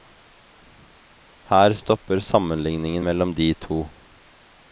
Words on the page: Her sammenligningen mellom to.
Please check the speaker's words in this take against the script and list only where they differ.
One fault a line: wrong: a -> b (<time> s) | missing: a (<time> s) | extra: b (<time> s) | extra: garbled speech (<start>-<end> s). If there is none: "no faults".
extra: stopper (1.7 s)
extra: de (3.3 s)